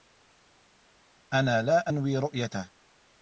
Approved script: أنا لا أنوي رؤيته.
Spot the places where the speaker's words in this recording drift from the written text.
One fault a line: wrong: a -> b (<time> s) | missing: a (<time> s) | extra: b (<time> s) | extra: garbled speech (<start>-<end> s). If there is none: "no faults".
no faults